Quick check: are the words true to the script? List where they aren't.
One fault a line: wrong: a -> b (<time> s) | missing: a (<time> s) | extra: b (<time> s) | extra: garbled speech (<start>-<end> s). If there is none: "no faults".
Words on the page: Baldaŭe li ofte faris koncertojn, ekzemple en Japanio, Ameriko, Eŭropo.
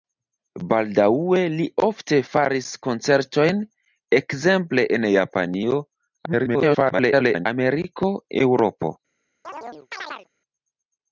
extra: garbled speech (6.3-7.5 s)